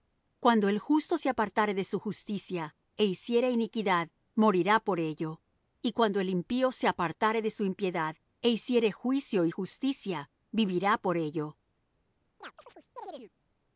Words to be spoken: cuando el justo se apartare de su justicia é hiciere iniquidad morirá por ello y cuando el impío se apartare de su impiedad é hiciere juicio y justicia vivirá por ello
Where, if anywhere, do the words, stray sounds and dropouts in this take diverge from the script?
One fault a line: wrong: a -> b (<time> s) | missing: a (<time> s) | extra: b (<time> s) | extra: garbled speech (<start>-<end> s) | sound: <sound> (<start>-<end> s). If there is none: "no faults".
sound: chirp (12.4-13.3 s)